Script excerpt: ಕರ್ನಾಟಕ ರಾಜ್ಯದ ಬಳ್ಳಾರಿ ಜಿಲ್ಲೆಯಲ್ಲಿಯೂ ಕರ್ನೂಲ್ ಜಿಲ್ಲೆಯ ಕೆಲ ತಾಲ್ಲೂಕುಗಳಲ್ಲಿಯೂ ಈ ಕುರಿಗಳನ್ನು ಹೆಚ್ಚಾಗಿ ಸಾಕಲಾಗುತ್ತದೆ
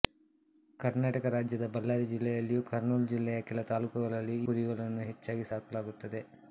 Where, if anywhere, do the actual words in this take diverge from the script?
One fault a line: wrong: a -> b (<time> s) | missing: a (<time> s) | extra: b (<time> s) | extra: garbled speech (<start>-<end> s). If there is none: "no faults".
missing: ಈ (4.5 s)